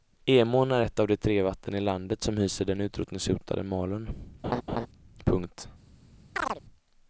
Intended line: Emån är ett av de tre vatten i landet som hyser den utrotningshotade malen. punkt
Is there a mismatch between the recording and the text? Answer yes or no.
no